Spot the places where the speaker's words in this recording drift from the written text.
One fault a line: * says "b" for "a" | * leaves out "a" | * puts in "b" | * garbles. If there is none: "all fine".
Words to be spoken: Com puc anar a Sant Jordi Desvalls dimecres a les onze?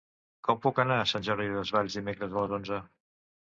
all fine